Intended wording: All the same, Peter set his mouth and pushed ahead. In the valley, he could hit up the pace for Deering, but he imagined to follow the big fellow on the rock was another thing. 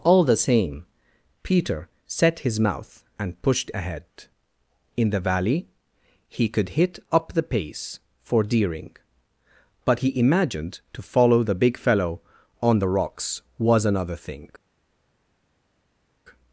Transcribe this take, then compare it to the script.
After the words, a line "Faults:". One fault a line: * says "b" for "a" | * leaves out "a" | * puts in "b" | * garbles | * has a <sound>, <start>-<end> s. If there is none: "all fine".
All the same, Peter set his mouth and pushed ahead. In the valley, he could hit up the pace for Deering, but he imagined to follow the big fellow on the rocks was another thing.
Faults:
* says "rocks" for "rock"